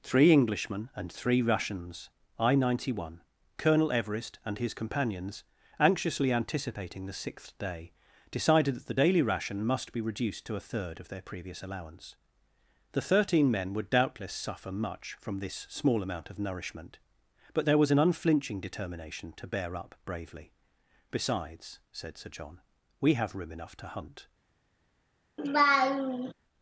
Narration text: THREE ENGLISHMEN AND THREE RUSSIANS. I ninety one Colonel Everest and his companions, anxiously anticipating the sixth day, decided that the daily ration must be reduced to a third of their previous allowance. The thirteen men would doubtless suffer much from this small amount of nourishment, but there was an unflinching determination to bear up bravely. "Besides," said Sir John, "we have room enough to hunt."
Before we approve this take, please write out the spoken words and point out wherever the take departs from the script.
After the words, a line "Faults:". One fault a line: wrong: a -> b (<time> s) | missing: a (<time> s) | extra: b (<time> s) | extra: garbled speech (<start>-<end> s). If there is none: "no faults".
THREE ENGLISHMEN AND THREE RUSSIANS. I ninety one Colonel Everest and his companions, anxiously anticipating the sixth day, decided that the daily ration must be reduced to a third of their previous allowance. The thirteen men would doubtless suffer much from this small amount of nourishment, but there was an unflinching determination to bear up bravely. "Besides," said Sir John, "we have room enough to hunt."
Faults:
no faults